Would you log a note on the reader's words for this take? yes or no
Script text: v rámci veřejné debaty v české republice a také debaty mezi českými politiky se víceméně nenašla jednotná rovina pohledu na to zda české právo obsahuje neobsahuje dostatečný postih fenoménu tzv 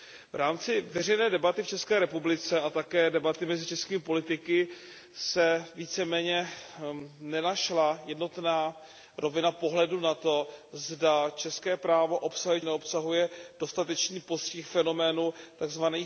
no